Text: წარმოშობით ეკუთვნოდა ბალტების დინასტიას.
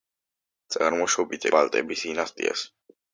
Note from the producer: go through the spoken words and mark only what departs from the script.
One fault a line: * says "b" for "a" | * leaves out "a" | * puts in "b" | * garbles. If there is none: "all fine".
* leaves out "ეკუთვნოდა"